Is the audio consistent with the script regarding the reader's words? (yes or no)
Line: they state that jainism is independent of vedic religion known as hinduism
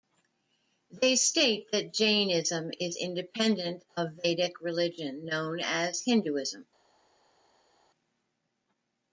yes